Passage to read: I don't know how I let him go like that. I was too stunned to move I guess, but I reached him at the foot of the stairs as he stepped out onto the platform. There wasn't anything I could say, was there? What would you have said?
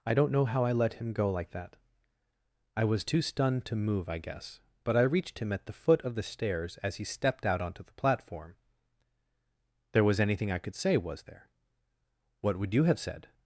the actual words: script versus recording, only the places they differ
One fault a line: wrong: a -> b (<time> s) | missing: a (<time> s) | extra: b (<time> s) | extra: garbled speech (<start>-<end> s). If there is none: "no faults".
wrong: wasn't -> was (10.0 s)